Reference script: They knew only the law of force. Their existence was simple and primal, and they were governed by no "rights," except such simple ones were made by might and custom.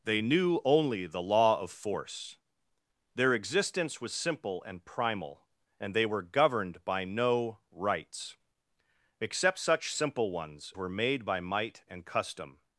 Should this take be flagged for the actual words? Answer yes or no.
no